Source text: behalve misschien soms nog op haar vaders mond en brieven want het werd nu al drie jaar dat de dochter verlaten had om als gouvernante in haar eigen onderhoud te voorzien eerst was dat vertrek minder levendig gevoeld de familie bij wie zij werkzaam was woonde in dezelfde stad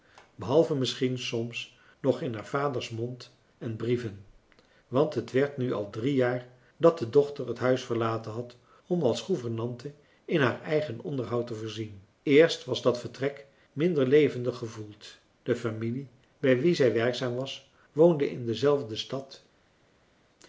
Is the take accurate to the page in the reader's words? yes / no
no